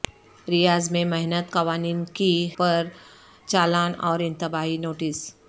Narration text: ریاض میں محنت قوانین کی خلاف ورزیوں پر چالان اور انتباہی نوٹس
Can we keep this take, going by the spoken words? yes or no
no